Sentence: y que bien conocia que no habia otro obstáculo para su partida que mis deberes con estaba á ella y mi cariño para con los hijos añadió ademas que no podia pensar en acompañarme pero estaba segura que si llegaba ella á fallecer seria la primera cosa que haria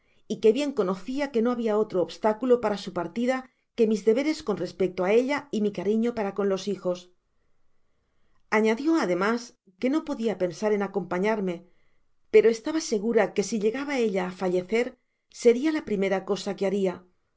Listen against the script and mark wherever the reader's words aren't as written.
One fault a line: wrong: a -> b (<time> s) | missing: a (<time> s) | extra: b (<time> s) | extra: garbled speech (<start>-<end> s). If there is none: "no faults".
wrong: estaba -> respecto (4.7 s)